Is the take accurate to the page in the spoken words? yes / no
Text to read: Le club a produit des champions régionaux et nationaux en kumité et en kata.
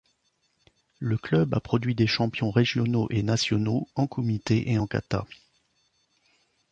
yes